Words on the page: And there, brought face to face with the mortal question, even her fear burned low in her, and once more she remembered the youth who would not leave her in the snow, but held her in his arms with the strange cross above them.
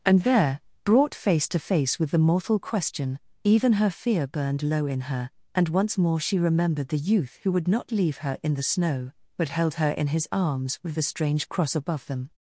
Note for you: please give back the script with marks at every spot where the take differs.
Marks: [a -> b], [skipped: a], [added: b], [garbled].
And there, brought face to face with the mortal question, even her fear burned low in her, and once more she remembered the youth who would not leave her in the snow, but held her in his arms with the strange cross above them.